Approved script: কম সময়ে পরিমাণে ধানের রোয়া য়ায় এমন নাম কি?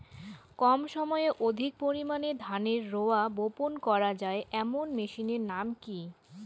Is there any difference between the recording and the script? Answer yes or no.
yes